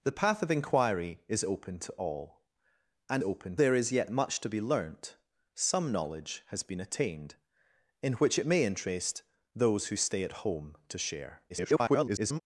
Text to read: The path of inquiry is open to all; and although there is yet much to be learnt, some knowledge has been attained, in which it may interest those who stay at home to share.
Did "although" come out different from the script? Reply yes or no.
yes